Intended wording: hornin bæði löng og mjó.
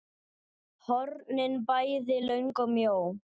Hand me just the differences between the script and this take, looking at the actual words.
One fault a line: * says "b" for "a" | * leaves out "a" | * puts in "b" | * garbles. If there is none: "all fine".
all fine